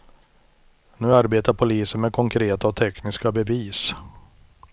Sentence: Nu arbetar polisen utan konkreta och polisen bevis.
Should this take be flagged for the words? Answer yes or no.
yes